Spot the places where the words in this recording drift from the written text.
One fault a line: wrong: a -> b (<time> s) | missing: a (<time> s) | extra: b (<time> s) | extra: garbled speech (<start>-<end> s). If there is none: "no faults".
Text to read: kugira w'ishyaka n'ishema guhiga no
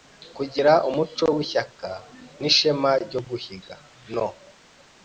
extra: umuco (0.9 s)
extra: ryo (3.0 s)